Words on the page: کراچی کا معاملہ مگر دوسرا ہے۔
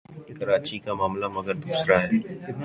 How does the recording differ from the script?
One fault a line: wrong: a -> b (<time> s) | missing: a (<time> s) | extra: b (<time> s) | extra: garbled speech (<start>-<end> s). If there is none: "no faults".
no faults